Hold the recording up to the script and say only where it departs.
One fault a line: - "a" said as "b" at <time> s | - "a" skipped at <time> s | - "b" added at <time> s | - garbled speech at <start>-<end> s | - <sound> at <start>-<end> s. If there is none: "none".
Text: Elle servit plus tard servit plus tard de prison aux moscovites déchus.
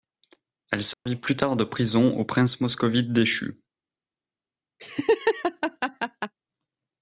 - dropout at 0.9-1.1 s
- "servit plus tard" skipped at 1.6 s
- "princes" added at 2.2 s
- laugh at 4.8-6.3 s